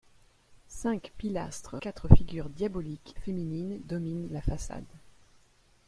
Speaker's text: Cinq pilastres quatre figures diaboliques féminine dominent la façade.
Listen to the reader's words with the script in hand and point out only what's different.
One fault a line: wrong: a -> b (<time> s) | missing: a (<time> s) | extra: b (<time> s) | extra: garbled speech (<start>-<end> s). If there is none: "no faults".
no faults